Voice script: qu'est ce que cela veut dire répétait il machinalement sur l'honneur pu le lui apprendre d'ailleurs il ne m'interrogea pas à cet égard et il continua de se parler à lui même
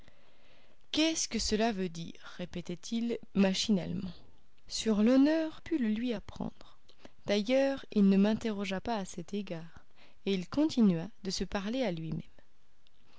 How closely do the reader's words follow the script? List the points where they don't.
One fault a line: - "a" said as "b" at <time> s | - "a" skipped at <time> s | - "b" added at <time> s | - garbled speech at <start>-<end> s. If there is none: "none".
none